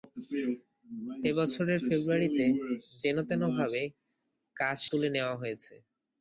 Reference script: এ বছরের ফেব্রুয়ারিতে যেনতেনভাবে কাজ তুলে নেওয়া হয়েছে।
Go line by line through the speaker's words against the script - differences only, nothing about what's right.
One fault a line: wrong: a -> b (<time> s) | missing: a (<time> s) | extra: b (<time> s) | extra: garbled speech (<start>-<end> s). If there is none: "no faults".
no faults